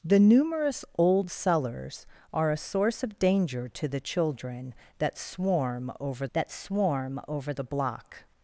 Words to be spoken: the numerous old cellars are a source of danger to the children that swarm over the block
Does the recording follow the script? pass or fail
fail